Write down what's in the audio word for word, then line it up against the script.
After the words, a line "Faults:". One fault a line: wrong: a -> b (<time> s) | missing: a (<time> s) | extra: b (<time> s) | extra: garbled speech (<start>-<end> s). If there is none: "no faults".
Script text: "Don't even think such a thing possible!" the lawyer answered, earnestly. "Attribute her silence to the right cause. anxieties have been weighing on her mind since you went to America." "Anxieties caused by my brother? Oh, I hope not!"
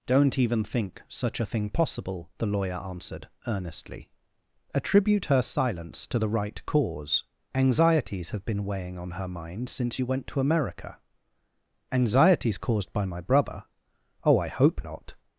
"Don't even think such a thing possible!" the lawyer answered, earnestly. "Attribute her silence to the right cause. anxieties have been weighing on her mind since you went to America." "Anxieties caused by my brother? Oh, I hope not!"
Faults:
no faults